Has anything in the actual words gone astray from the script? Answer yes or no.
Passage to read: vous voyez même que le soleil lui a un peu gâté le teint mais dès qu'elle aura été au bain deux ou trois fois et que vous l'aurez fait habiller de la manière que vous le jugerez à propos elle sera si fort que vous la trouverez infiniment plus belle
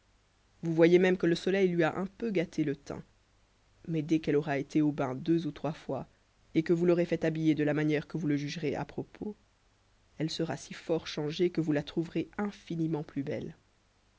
yes